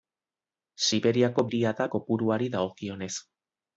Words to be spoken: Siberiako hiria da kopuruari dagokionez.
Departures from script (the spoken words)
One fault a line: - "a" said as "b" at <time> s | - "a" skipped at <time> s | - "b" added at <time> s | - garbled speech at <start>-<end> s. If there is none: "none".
none